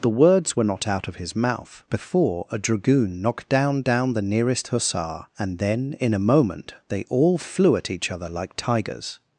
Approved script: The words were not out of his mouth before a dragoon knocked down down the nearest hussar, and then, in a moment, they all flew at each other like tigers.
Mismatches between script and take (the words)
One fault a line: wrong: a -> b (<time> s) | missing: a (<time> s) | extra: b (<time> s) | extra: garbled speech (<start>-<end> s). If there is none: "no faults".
no faults